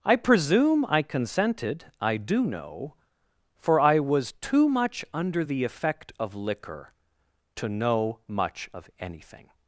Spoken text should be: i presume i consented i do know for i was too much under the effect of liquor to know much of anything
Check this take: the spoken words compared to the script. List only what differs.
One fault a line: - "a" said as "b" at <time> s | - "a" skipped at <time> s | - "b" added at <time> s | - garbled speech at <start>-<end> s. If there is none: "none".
none